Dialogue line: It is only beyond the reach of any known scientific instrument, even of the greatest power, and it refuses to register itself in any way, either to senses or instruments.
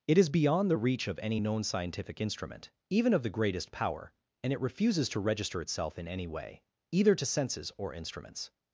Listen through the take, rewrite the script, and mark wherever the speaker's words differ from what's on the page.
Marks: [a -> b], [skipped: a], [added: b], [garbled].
It is [skipped: only] beyond the reach of any known scientific instrument, even of the greatest power, and it refuses to register itself in any way, either to senses or instruments.